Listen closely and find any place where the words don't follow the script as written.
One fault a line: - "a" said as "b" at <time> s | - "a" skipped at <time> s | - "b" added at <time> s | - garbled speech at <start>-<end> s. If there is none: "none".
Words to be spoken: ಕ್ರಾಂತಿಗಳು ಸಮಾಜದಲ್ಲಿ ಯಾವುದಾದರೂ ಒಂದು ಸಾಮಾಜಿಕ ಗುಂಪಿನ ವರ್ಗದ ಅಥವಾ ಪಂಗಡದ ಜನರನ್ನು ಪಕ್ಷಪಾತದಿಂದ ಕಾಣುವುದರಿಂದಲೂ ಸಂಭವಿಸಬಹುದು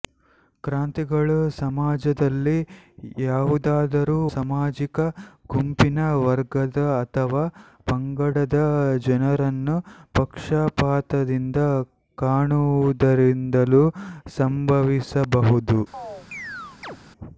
- "ಒಂದು" skipped at 4.2 s